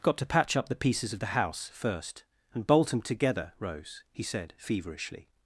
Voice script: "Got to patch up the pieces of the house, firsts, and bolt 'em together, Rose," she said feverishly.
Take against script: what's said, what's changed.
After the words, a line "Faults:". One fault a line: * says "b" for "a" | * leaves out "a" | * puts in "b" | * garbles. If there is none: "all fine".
"Got to patch up the pieces of the house, first, and bolt 'em together, Rose," he said feverishly.
Faults:
* says "first" for "firsts"
* says "he" for "she"